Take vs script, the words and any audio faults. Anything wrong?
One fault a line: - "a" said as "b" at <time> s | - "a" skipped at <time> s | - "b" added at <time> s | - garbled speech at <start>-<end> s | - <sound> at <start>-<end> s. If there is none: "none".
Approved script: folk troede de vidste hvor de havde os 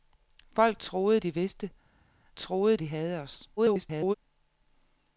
- "hvor" said as "troede" at 2.4 s
- garbled speech at 3.6-4.1 s